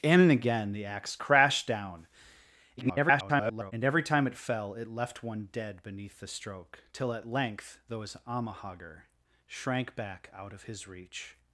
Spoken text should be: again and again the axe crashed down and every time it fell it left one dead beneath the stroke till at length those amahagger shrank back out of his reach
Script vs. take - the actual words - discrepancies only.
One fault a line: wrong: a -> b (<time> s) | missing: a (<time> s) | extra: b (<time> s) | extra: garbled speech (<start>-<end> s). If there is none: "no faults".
extra: garbled speech (2.8-3.7 s)